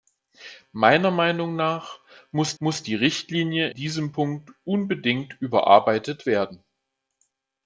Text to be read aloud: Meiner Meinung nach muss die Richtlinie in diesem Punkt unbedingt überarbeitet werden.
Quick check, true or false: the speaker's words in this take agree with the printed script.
false